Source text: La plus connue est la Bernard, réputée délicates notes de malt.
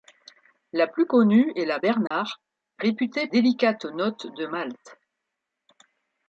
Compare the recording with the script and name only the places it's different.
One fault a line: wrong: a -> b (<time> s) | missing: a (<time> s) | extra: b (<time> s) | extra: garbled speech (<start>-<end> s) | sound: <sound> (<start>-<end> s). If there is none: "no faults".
sound: dropout (2.1-2.1 s)